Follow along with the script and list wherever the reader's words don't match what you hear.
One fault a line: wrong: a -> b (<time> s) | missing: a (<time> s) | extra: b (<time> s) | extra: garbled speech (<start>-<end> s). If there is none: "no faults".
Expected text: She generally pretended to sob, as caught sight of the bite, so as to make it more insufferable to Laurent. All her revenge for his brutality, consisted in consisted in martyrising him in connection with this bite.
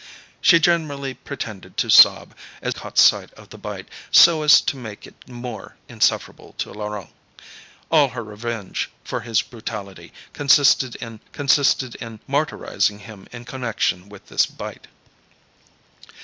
no faults